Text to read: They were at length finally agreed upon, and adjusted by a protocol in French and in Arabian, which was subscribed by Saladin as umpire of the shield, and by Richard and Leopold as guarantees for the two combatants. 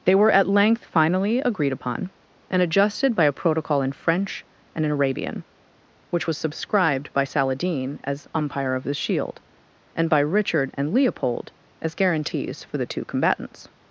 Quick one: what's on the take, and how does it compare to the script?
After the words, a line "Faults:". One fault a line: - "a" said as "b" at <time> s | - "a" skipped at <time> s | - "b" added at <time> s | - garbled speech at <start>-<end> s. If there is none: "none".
They were at length finally agreed upon, and adjusted by a protocol in French and in Arabian, which was subscribed by Saladin as umpire of the shield, and by Richard and Leopold as guarantees for the two combatants.
Faults:
none